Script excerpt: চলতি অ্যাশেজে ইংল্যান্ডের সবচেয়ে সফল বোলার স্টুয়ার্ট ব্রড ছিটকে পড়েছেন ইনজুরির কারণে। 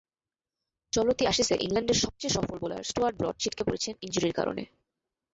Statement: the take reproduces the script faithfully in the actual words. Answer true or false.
true